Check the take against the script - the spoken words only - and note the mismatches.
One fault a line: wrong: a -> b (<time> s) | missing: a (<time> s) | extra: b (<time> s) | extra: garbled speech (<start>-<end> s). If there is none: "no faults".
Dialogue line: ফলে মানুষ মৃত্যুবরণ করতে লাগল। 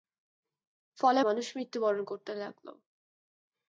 no faults